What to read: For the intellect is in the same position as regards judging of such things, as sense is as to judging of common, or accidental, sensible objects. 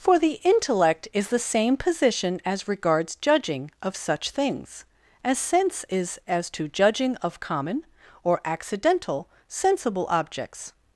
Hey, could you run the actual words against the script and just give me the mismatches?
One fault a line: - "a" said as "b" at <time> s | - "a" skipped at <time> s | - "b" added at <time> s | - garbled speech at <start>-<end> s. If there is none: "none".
- "in" skipped at 1.3 s